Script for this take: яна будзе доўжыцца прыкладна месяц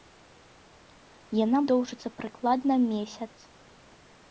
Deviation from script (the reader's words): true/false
true